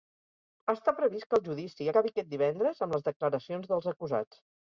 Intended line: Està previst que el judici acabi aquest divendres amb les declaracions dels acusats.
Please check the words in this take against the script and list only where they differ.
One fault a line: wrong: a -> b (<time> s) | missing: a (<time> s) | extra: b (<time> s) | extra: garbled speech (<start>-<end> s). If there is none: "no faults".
no faults